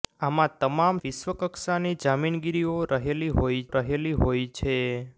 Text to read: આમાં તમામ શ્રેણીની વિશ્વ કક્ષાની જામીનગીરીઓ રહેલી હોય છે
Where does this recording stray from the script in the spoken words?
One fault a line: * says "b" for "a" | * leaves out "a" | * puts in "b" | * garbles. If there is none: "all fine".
* leaves out "શ્રેણીની"
* puts in "રહેલી હોય"